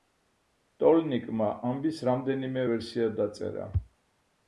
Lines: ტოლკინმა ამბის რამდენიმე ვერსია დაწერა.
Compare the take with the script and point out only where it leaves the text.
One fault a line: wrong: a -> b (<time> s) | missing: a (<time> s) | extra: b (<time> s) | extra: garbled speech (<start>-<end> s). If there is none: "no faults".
no faults